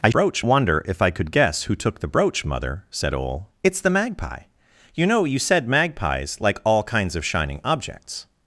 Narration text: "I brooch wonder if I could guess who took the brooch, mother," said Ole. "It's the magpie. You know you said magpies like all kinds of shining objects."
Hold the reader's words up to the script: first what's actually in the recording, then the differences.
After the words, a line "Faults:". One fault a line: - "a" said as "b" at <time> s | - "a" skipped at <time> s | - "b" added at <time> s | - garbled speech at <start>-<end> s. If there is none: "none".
"I brooch wonder if I could guess who took the brooch, mother," said Ole. "It's the magpie. You know you said magpies like all kinds of shining objects."
Faults:
none